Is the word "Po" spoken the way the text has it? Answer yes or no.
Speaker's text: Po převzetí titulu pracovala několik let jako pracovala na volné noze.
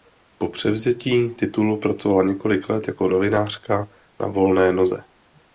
yes